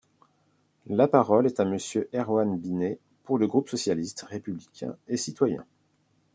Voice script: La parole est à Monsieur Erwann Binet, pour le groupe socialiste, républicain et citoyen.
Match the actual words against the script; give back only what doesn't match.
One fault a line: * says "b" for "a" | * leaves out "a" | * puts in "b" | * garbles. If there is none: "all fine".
all fine